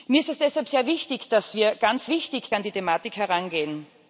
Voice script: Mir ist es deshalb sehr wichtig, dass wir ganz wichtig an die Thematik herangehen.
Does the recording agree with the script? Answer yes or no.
yes